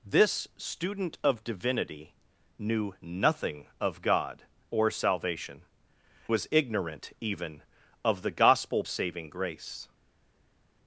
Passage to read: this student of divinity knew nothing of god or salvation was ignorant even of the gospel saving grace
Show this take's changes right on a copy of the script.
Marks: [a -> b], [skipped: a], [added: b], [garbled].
this student of divinity knew nothing of god or salvation was ignorant even of the gospel saving grace